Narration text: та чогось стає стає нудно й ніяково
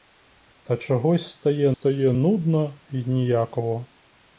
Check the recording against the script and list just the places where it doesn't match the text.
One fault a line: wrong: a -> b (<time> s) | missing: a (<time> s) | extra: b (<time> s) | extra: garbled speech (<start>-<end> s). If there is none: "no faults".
no faults